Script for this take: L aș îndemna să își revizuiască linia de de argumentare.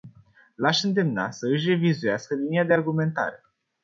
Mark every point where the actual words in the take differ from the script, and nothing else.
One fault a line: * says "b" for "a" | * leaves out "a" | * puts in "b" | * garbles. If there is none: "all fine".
* leaves out "de"